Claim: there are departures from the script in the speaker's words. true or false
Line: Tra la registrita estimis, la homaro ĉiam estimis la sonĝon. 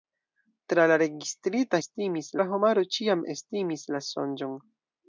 false